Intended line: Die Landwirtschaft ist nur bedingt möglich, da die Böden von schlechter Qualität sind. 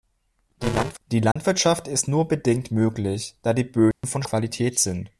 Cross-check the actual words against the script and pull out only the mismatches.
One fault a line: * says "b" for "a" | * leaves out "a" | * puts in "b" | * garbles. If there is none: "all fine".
* leaves out "schlechter"